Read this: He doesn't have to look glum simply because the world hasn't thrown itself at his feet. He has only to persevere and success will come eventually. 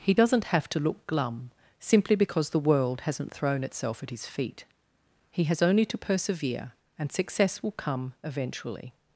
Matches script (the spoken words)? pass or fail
pass